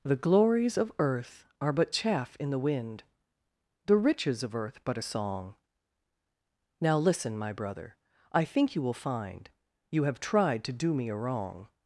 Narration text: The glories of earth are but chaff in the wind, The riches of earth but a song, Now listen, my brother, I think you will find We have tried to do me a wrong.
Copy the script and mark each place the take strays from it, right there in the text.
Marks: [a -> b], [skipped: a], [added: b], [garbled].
The glories of earth are but chaff in the wind, The riches of earth but a song, Now listen, my brother, I think you will find [We -> You] have tried to do me a wrong.